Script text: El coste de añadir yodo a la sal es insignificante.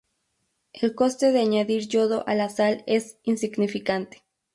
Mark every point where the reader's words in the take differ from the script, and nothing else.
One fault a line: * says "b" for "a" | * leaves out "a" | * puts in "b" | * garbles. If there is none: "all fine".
all fine